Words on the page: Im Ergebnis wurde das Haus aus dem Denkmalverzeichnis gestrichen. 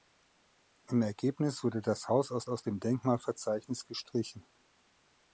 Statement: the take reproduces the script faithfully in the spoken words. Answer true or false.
false